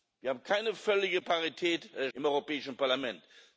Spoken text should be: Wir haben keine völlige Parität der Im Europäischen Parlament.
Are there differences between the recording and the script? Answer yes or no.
no